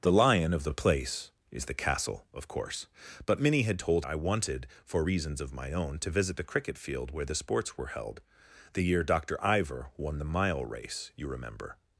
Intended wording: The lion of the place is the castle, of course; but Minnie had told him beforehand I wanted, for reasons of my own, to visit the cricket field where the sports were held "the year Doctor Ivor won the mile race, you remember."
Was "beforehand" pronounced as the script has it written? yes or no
no